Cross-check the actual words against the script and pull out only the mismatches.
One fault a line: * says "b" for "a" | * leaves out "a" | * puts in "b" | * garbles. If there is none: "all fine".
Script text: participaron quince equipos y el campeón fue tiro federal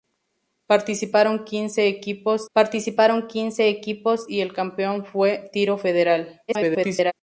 * puts in "participaron quince equipos"
* garbles